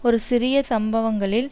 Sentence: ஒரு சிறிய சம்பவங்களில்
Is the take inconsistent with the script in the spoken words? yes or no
no